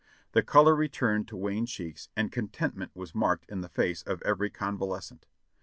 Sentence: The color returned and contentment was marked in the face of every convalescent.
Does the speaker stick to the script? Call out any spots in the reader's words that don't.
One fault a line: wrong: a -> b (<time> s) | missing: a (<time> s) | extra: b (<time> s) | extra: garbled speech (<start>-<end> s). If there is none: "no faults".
extra: to wan cheeks (1.3 s)